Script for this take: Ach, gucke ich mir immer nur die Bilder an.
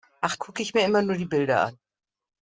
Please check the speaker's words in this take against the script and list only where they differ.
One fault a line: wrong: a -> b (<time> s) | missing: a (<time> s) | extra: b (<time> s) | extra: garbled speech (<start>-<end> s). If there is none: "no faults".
no faults